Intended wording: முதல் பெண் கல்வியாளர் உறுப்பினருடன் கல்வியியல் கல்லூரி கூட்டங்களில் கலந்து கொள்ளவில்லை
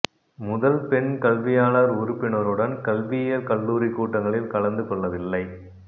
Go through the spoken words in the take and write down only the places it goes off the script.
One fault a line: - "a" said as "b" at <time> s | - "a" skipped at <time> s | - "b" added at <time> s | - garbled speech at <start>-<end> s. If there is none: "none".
none